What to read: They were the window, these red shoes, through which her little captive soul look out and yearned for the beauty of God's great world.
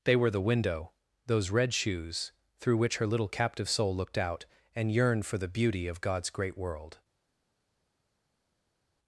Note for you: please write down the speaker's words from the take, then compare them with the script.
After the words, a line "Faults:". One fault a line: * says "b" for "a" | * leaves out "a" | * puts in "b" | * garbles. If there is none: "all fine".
They were the window, those red shoes, through which her little captive soul looked out and yearned for the beauty of God's great world.
Faults:
* says "those" for "these"
* says "looked" for "look"